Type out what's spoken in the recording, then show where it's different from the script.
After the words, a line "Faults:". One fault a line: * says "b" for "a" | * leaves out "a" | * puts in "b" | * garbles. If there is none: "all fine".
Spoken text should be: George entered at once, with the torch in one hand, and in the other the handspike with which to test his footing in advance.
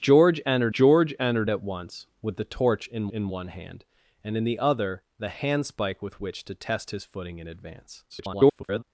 George entered george entered at once, with the torch in in one hand, and in the other the handspike with which to test his footing in advance. [garbled]
Faults:
* puts in "george entered"
* puts in "in"
* garbles